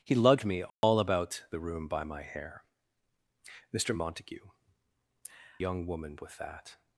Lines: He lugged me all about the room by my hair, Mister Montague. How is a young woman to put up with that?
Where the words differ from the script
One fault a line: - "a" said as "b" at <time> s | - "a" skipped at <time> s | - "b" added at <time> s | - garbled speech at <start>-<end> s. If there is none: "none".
- "How is a" skipped at 4.5 s
- "to put up" skipped at 6.2 s